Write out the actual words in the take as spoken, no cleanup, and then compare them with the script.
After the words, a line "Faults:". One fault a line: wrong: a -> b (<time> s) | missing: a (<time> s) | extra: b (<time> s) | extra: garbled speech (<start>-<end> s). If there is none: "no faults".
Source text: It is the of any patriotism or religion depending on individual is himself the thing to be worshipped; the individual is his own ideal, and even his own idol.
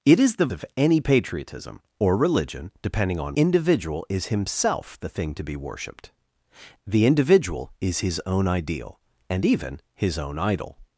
It is the of any patriotism or religion depending on individual is himself the thing to be worshipped; the individual is his own ideal, and even his own idol.
Faults:
no faults